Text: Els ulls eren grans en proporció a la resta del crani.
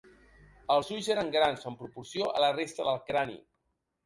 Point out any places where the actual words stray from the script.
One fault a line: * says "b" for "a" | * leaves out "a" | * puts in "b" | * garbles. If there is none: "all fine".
all fine